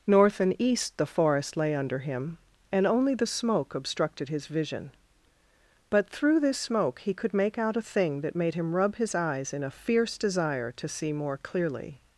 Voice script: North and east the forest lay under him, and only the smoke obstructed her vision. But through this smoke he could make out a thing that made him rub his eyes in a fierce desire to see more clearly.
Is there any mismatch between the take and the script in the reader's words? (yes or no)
yes